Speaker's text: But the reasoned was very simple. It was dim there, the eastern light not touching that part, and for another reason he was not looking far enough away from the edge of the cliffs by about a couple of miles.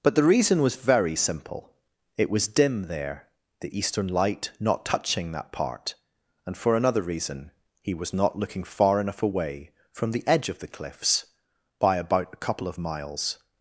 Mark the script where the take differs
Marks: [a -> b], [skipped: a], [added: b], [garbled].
But the [reasoned -> reason] was very simple. It was dim there, the eastern light not touching that part, and for another reason he was not looking far enough away from the edge of the cliffs by about a couple of miles.